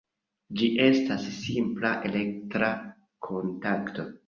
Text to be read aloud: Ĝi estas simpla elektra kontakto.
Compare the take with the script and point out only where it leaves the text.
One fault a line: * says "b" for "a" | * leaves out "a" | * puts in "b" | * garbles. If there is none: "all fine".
all fine